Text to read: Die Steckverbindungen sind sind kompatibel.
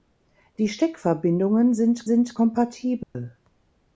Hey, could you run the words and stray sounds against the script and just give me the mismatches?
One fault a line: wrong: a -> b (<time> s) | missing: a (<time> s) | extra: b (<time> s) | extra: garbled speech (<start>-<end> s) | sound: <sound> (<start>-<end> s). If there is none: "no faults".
sound: dropout (3.0-3.2 s)